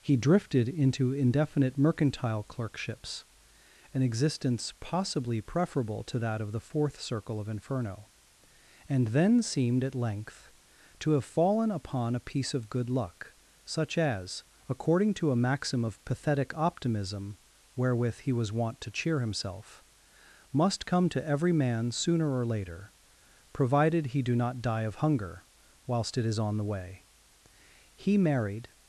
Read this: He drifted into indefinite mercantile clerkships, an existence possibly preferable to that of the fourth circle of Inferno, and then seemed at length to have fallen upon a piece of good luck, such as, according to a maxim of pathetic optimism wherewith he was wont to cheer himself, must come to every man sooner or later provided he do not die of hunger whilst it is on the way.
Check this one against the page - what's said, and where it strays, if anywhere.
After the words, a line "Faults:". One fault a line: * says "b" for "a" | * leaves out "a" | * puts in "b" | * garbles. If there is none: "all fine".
He drifted into indefinite mercantile clerkships, an existence possibly preferable to that of the fourth circle of Inferno, and then seemed at length to have fallen upon a piece of good luck, such as, according to a maxim of pathetic optimism wherewith he was wont to cheer himself, must come to every man sooner or later provided he do not die of hunger whilst it is on the way. He married
Faults:
* puts in "He married"